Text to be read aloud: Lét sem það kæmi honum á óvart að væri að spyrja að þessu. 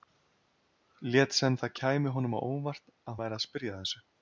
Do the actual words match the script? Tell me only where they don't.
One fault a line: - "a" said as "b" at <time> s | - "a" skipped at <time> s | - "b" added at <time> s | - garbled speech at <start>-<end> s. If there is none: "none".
none